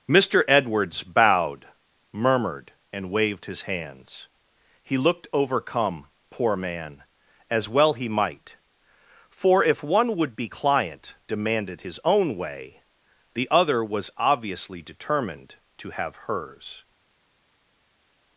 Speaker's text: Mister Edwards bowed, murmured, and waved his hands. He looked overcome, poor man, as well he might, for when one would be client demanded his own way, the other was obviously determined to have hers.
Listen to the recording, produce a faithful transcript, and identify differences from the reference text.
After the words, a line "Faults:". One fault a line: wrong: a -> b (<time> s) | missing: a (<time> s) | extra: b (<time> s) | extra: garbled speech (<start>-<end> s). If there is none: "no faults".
Mister Edwards bowed, murmured, and waved his hands. He looked overcome, poor man, as well he might, for if one would be client demanded his own way, the other was obviously determined to have hers.
Faults:
wrong: when -> if (9.6 s)